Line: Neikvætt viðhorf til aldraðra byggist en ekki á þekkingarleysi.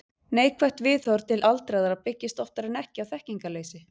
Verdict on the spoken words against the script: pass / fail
fail